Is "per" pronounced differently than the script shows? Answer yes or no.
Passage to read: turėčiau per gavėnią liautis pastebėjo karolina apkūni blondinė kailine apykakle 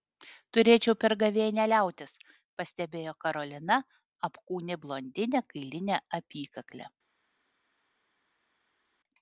no